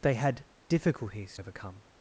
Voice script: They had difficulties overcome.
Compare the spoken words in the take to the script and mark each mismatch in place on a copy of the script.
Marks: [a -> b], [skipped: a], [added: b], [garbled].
They had difficulties overcome.